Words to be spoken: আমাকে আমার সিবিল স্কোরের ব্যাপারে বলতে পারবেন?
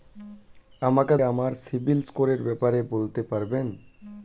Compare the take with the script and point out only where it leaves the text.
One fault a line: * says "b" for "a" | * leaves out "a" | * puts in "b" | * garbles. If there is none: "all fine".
all fine